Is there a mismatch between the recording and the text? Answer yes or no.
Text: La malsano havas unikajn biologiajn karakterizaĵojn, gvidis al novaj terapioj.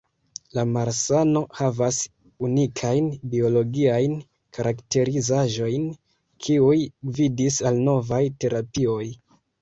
yes